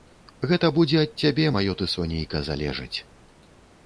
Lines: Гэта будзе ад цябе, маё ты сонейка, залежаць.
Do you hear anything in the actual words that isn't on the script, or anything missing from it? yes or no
no